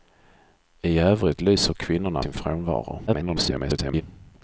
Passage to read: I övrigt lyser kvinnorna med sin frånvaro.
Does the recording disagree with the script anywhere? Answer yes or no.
yes